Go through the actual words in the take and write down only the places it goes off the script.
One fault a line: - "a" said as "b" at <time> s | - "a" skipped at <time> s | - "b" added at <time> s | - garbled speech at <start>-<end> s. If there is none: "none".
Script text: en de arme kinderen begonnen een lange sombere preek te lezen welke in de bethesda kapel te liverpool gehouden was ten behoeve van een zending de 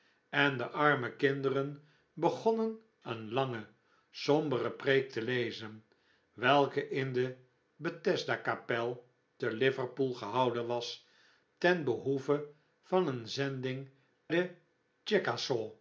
none